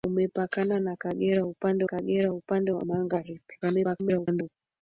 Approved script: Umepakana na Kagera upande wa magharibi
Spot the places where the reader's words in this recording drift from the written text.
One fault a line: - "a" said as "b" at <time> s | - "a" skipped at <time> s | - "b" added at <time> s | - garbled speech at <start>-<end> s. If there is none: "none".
- "Kagera upande" added at 1.9 s
- garbled speech at 3.6-4.6 s